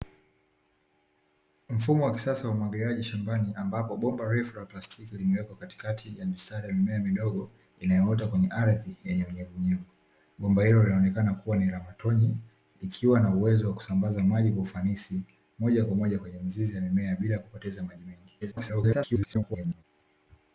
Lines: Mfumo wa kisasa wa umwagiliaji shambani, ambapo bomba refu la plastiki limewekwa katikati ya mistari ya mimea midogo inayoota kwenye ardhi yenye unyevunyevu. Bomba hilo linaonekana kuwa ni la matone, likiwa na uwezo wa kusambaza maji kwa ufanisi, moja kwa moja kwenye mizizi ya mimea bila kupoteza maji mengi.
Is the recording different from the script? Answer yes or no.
yes